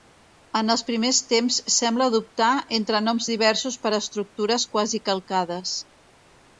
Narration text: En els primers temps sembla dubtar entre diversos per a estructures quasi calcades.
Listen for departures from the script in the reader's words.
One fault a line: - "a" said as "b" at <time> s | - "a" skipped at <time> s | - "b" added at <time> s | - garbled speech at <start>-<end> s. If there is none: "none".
- "noms" added at 3.1 s